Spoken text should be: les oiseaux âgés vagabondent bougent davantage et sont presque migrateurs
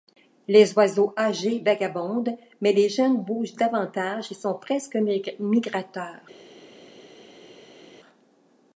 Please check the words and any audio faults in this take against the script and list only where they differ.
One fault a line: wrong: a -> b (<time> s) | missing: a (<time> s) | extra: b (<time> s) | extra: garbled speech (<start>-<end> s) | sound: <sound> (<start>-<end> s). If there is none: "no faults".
extra: mais les jeunes (2.6 s)